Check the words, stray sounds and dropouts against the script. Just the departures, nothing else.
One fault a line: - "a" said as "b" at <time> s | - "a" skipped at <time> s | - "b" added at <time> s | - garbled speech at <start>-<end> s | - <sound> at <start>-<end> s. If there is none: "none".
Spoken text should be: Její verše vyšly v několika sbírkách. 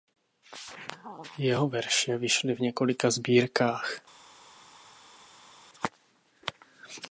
- "Její" said as "Jeho" at 1.4 s